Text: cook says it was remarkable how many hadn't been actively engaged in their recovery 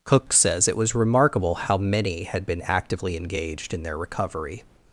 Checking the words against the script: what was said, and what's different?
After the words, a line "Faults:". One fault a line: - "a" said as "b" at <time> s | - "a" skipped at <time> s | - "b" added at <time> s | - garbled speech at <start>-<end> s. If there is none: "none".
cook says it was remarkable how many had been actively engaged in their recovery
Faults:
- "hadn't" said as "had" at 2.2 s